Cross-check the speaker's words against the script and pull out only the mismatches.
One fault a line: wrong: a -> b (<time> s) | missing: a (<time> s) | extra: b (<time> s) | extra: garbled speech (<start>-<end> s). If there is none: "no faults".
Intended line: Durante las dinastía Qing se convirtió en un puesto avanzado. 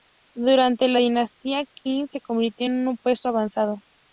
wrong: las -> la (0.9 s)